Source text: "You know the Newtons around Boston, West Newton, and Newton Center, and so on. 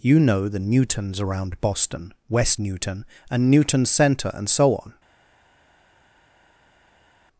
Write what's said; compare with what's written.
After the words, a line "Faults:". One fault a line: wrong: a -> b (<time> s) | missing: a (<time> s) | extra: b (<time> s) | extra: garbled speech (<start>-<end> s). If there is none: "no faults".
"You know the Newtons around Boston, West Newton, and Newton Center, and so on.
Faults:
no faults